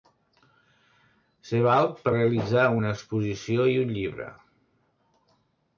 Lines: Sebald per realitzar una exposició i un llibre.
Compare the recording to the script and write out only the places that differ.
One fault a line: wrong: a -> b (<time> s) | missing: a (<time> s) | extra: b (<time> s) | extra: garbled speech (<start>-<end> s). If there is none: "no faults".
no faults